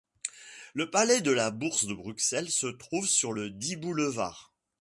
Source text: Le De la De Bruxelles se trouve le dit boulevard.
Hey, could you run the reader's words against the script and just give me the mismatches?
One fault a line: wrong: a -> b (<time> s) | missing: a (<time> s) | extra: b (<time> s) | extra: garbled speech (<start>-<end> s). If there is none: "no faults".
extra: Palais (0.9 s)
extra: Bourse (1.5 s)
extra: sur (3.0 s)